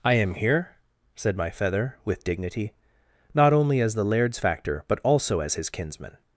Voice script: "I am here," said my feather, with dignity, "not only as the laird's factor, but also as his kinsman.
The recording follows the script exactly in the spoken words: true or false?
true